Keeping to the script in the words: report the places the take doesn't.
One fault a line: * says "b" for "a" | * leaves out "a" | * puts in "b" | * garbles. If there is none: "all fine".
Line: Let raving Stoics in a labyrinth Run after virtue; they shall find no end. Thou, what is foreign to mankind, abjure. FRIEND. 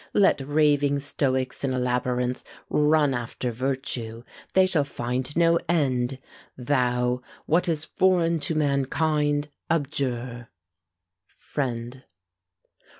all fine